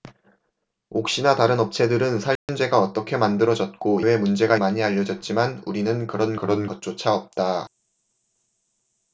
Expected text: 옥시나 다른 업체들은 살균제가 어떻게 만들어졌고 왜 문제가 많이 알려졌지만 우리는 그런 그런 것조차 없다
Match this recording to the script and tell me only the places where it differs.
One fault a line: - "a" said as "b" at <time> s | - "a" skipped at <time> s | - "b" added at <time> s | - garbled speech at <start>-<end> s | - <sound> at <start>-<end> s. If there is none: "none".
- dropout at 2.4-2.5 s